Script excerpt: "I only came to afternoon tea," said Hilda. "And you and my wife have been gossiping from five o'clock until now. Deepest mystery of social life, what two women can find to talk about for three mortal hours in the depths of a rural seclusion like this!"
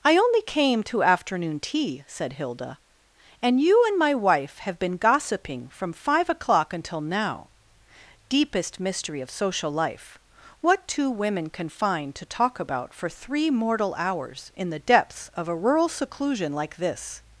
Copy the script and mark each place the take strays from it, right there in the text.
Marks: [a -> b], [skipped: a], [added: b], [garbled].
"I only came to afternoon tea," said Hilda. "And you and my wife have been gossiping from five o'clock until now. Deepest mystery of social life, what two women can find to talk about for three mortal hours in the depths of a rural seclusion like this!"